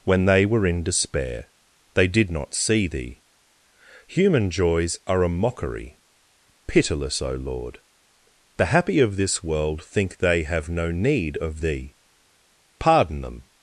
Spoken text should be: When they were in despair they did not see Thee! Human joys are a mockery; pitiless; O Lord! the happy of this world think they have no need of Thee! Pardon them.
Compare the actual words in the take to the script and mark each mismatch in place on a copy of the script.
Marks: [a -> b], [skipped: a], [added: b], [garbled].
When they were in despair they did not see Thee! Human joys are a mockery; pitiless; O Lord! the happy of this world think they have no need of Thee! Pardon them.